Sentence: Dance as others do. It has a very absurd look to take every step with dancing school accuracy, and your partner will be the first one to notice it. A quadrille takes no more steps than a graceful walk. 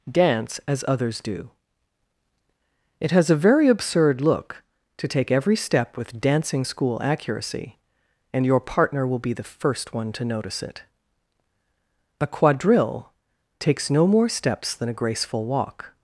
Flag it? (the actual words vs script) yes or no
no